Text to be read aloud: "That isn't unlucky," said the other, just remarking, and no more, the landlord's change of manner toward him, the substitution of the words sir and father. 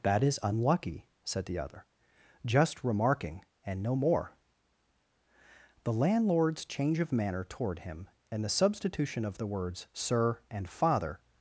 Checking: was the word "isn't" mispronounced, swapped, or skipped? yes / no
yes